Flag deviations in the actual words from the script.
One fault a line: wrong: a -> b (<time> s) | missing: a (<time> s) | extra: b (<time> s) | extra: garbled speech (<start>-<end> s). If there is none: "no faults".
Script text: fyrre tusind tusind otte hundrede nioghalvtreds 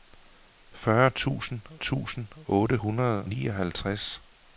no faults